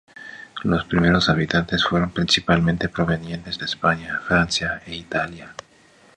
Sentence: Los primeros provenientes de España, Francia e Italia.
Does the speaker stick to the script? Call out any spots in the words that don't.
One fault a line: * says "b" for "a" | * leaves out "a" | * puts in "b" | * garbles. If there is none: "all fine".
* puts in "habitantes fueron principalmente"